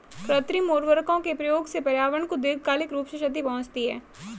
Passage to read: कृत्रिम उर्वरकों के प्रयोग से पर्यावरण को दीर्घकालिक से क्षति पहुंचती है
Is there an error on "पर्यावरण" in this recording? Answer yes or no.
no